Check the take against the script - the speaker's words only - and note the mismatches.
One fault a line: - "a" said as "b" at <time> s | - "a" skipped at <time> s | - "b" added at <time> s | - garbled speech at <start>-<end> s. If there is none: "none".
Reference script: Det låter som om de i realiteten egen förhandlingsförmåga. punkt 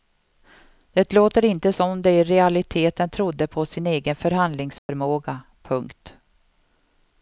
- "inte" added at 1.4 s
- "trodde på sin" added at 3.1 s